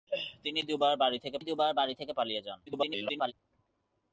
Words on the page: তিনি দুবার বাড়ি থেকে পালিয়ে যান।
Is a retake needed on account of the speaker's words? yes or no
yes